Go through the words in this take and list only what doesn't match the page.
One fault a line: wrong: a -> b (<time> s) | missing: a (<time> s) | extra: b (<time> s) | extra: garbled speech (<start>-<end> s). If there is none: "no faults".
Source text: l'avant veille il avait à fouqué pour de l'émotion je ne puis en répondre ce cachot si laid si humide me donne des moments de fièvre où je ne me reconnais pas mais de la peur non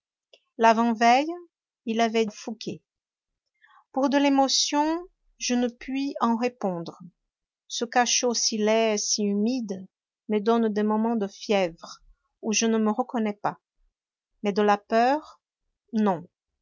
no faults